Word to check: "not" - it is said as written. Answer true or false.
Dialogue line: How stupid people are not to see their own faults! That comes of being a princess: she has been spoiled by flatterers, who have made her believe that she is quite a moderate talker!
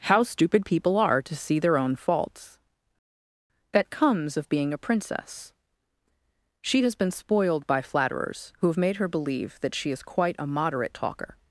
false